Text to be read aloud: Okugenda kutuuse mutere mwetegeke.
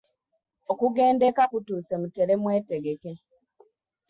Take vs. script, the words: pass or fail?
fail